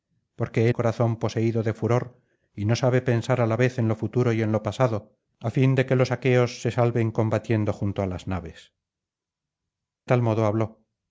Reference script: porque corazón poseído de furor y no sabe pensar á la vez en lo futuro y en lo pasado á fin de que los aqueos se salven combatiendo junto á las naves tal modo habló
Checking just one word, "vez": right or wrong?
right